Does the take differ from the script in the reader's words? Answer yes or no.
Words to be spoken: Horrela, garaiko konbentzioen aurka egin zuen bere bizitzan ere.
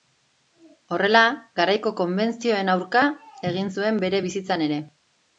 no